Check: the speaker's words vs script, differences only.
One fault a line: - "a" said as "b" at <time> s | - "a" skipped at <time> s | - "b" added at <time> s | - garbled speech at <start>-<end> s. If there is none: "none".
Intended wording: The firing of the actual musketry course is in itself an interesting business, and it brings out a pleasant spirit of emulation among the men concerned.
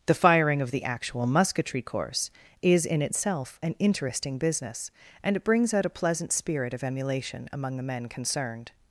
none